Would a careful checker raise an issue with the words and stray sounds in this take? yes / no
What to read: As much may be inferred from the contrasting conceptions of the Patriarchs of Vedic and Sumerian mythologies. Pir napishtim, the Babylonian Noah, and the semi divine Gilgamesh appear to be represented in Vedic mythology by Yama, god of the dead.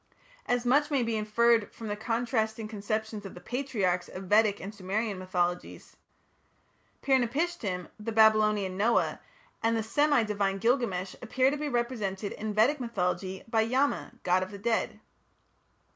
no